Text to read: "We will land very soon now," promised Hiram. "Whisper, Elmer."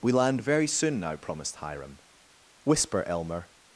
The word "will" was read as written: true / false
false